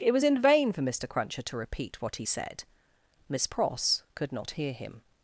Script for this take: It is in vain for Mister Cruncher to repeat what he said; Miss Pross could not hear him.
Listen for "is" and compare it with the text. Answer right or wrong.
wrong